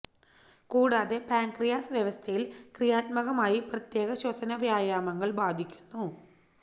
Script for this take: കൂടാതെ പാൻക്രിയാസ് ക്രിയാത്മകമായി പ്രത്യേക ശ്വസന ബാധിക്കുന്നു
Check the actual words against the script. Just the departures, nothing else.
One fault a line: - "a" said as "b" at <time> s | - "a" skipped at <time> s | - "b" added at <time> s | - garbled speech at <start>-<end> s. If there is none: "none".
- "വ്യവസ്ഥയിൽ" added at 1.9 s
- "വ്യായാമങ്ങൾ" added at 4.6 s